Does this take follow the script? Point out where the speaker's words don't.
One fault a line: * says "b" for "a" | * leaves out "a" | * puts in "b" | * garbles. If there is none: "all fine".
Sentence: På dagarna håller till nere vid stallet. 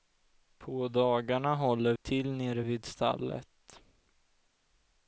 all fine